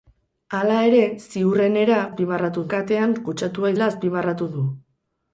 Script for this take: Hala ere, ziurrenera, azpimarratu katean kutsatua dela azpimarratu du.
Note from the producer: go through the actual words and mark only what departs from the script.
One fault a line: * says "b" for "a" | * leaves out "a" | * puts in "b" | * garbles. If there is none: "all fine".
all fine